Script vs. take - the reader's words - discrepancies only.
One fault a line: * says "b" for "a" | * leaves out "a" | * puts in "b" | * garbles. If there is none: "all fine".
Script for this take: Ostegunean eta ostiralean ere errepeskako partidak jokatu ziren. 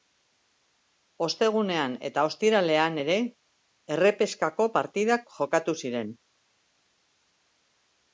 all fine